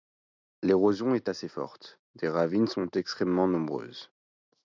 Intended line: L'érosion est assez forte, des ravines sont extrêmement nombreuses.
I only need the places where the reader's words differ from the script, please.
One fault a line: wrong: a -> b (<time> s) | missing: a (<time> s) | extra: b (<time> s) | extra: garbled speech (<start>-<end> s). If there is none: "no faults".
no faults